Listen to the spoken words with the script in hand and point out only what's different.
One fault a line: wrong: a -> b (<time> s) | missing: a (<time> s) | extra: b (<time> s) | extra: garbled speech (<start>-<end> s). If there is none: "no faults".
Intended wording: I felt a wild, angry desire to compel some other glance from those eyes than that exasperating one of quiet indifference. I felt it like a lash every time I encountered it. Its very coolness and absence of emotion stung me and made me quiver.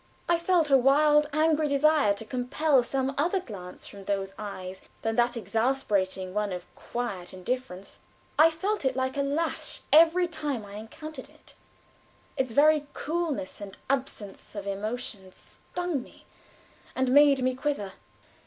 no faults